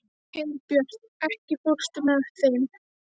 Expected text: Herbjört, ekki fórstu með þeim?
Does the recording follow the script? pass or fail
pass